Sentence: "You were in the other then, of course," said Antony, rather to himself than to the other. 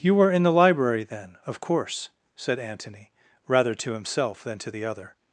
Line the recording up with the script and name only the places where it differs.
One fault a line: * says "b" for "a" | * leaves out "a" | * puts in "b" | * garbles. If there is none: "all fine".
* says "library" for "other"